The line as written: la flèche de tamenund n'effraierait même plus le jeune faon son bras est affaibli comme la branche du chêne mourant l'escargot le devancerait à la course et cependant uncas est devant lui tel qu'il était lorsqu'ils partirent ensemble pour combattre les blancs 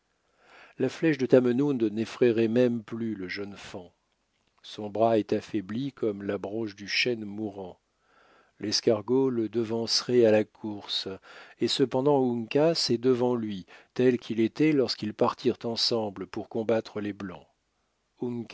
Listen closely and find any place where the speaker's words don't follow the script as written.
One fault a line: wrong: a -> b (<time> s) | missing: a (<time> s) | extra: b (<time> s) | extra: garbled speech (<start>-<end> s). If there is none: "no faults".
no faults